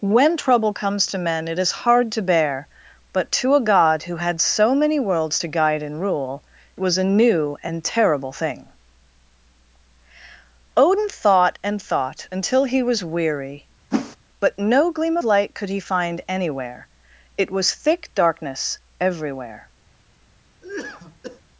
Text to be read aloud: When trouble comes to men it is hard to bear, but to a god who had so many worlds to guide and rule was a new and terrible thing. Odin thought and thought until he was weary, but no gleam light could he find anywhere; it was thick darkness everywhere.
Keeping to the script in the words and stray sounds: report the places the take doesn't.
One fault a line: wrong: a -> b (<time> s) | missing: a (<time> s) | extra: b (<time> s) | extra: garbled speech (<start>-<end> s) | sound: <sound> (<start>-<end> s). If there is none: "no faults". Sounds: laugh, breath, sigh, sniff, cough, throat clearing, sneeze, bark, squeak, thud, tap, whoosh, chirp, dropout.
sound: whoosh (13.9-14.2 s)
sound: cough (20.6-21.4 s)